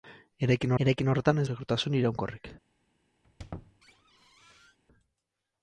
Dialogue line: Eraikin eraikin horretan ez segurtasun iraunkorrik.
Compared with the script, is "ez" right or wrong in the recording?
right